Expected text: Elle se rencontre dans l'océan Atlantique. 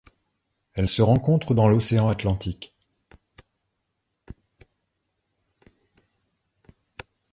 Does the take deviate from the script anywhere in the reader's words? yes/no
no